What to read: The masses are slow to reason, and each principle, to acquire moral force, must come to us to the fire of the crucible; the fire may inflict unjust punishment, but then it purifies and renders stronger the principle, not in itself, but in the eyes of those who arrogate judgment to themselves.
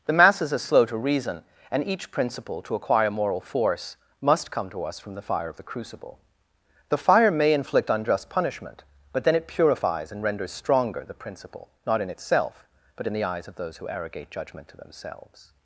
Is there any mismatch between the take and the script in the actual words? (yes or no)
yes